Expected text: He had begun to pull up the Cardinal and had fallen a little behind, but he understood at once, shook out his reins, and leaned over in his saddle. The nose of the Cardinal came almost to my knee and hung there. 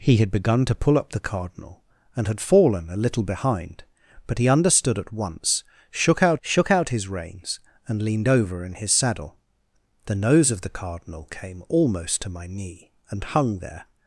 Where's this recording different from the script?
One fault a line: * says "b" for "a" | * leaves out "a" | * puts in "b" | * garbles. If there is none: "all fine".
* puts in "shook out"